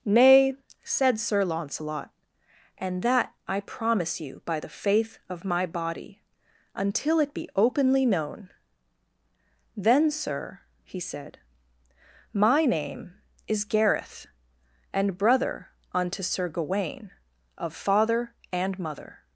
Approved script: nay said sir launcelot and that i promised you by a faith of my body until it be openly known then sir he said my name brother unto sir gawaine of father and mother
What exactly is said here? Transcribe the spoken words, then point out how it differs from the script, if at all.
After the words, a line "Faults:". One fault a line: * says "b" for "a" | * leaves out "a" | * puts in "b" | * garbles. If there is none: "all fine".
nay said sir launcelot and that i promise you by the faith of my body until it be openly known then sir he said my name is gareth and brother unto sir gawaine of father and mother
Faults:
* says "promise" for "promised"
* says "the" for "a"
* puts in "is gareth and"